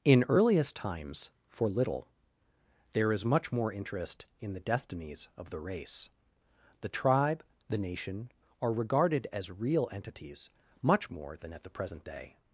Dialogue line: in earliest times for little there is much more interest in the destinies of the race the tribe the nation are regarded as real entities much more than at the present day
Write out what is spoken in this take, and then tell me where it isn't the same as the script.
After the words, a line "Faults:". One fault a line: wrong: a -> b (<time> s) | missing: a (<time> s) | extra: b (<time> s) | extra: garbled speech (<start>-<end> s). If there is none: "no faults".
in earliest times for little there is much more interest in the destinies of the race the tribe the nation are regarded as real entities much more than at the present day
Faults:
no faults